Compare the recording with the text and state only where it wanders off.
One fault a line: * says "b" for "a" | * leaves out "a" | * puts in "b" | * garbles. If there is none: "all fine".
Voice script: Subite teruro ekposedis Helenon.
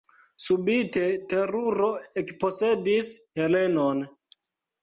all fine